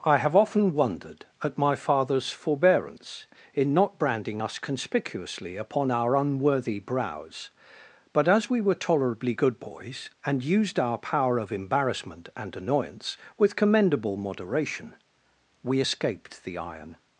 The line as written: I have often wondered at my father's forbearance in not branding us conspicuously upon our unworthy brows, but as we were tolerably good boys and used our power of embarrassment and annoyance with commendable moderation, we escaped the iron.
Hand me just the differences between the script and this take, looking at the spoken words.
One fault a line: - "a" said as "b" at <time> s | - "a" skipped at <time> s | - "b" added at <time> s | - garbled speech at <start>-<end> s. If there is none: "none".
none